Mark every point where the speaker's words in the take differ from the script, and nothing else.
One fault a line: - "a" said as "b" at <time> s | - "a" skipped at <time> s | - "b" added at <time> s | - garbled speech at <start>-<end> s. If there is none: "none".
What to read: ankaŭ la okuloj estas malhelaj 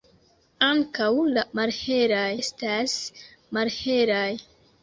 - "okuloj" said as "malhelaj" at 1.6 s